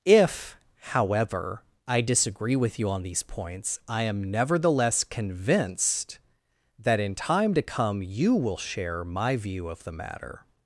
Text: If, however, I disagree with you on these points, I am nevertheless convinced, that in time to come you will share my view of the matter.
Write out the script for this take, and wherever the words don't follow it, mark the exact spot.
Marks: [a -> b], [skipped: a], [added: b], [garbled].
If, however, I disagree with you on these points, I am nevertheless convinced, that in time to come you will share my view of the matter.